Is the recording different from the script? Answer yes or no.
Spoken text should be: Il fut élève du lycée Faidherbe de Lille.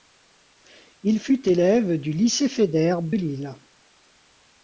yes